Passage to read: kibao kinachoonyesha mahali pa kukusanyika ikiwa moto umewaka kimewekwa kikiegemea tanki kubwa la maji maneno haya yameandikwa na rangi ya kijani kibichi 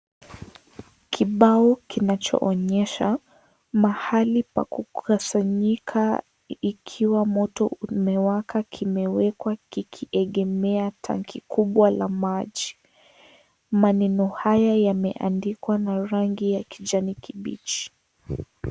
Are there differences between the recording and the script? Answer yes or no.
no